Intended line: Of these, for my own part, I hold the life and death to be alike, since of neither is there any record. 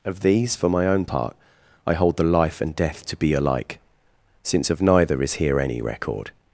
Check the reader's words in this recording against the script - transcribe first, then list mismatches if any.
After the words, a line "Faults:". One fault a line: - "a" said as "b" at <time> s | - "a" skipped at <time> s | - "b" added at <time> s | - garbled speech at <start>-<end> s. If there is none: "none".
Of these, for my own part, I hold the life and death to be alike, since of neither is here any record.
Faults:
- "there" said as "here" at 5.3 s